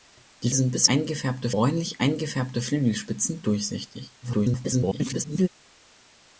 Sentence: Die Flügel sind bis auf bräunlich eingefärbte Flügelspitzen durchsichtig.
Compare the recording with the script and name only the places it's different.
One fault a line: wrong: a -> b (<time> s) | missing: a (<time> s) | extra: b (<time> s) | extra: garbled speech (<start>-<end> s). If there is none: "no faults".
missing: Flügel (0.5 s)
wrong: auf -> eingefärbte (0.9 s)
extra: garbled speech (4.2-5.5 s)